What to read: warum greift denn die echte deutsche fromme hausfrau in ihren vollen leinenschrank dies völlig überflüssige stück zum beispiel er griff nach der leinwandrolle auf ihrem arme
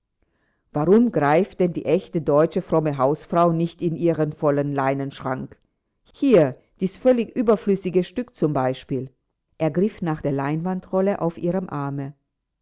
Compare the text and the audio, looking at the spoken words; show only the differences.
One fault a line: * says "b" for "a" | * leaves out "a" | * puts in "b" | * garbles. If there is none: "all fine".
* puts in "nicht"
* puts in "hier"